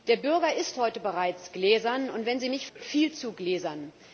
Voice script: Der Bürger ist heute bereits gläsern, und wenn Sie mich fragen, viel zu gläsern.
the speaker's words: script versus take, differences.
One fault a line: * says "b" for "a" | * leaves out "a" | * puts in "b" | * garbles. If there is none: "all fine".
* leaves out "fragen"